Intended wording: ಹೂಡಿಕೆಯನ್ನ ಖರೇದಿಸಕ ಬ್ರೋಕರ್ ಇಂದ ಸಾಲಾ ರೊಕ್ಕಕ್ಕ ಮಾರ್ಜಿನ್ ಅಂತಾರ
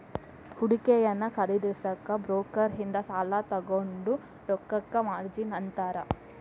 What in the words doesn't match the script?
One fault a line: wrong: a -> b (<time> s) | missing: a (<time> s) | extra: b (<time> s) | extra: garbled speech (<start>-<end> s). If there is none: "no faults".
extra: ತೊಗೊಂಡ್ (3.5 s)